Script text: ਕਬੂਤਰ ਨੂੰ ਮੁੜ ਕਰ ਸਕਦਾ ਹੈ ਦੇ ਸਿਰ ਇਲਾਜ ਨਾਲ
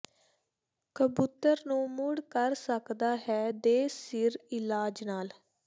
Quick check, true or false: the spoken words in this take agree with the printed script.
true